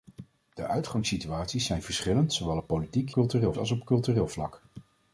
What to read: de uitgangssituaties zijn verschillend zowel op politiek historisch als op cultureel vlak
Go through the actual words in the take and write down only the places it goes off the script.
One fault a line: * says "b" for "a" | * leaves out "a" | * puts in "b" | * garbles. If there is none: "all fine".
* says "cultureel" for "historisch"